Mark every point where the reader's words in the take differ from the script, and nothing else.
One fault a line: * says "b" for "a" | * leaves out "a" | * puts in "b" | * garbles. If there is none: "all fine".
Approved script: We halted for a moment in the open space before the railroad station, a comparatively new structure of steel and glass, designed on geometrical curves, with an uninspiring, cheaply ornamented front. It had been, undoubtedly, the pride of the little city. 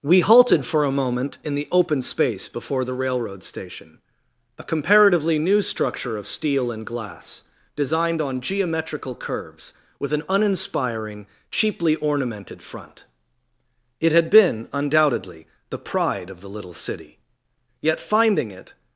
* puts in "Yet finding it"